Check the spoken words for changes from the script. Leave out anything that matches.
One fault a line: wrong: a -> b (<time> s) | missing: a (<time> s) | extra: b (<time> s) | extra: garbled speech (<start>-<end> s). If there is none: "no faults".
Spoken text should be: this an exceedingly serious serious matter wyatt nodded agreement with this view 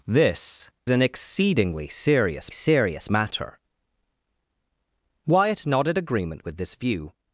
no faults